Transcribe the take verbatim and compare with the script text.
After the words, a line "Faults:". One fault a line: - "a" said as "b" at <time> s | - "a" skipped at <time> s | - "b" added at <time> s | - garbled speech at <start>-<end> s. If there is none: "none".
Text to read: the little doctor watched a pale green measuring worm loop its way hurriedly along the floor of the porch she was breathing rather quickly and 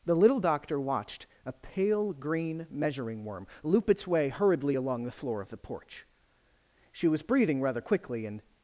the little doctor watched a pale green measuring worm loop its way hurriedly along the floor of the porch she was breathing rather quickly and
Faults:
none